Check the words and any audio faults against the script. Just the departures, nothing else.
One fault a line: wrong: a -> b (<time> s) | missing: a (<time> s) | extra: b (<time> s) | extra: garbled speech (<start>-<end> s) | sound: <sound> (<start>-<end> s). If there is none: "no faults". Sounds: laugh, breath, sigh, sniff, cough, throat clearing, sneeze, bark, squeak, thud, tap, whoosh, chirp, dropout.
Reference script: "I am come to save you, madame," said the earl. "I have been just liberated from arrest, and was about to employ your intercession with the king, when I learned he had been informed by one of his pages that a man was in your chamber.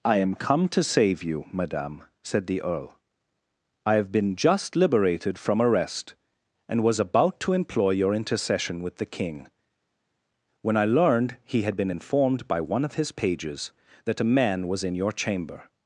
no faults